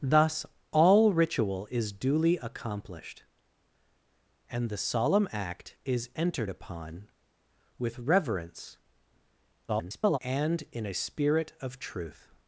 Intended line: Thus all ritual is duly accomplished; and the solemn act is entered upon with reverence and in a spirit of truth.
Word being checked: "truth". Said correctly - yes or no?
yes